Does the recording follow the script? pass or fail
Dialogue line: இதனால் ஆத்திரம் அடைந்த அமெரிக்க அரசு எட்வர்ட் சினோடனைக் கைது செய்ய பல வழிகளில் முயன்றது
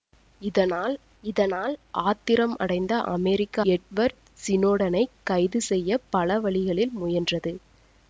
fail